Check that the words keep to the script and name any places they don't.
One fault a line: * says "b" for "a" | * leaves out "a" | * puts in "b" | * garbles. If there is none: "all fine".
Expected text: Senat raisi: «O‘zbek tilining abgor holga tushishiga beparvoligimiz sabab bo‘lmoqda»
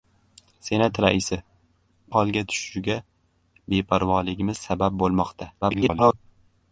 * leaves out "O‘zbek tilining abgor"
* garbles